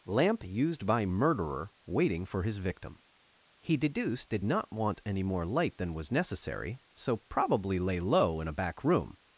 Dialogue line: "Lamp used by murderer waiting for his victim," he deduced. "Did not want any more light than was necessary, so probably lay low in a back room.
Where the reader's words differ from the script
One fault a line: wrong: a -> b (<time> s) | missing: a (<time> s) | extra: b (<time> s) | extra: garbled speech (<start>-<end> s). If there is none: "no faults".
no faults